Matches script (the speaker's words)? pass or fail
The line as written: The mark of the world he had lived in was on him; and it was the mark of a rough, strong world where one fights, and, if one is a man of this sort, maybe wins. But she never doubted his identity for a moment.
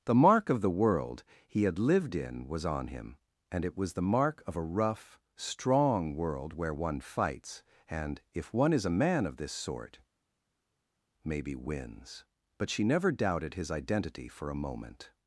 pass